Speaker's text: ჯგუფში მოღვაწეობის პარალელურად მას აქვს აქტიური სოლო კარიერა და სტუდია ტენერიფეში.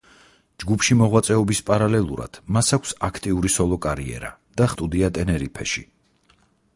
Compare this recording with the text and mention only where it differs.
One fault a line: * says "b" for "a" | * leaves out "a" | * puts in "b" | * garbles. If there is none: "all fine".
all fine